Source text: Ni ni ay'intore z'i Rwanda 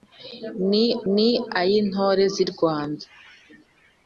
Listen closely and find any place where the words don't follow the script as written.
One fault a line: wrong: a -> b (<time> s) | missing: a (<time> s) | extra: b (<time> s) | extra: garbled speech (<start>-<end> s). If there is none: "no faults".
no faults